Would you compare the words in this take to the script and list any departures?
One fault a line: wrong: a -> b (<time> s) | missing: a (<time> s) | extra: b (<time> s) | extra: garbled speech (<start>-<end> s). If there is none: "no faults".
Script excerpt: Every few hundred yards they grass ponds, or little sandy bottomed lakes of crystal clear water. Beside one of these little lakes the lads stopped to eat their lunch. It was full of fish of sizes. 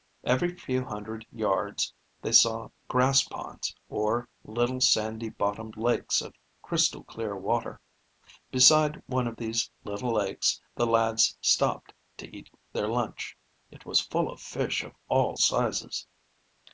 extra: saw (2.3 s)
extra: all (15.1 s)